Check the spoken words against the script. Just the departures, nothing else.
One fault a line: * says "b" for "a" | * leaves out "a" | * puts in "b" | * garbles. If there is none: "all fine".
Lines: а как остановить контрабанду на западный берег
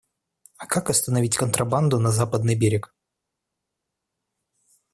all fine